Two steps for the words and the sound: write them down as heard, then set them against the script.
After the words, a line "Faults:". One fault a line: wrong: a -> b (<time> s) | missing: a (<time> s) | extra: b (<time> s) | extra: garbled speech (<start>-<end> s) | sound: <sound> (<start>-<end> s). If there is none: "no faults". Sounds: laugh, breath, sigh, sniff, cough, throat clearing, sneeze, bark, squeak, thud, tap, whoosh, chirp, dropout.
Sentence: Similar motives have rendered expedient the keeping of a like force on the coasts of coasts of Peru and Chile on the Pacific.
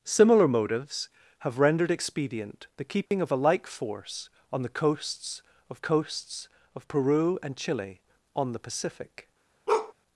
Similar motives have rendered expedient the keeping of a like force on the coasts of coasts of Peru and Chile on the Pacific.
Faults:
sound: dropout (3.1-3.1 s)
sound: bark (9.7-9.9 s)